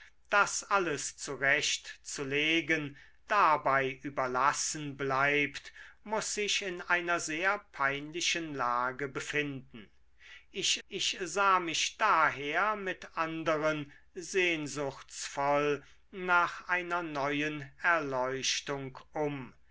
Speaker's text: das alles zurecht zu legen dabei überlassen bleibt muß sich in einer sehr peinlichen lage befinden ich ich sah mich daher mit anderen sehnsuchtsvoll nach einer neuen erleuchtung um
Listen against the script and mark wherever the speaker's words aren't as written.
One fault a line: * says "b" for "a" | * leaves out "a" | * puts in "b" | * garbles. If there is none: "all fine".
all fine